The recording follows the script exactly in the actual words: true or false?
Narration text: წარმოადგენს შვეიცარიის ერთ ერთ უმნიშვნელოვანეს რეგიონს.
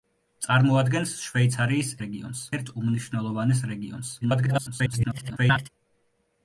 false